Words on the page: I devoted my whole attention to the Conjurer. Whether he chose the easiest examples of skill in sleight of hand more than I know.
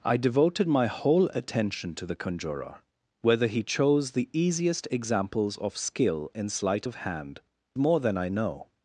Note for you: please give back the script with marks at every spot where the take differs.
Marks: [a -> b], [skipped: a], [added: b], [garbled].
I devoted my whole attention to the Conjurer. Whether he chose the easiest examples of skill in sleight of hand more than I know.